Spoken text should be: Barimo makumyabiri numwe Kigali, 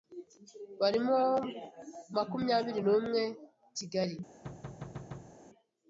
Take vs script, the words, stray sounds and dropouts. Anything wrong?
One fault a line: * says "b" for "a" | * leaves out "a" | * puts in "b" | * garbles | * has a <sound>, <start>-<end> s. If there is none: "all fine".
* has a thud, 4.4-5.4 s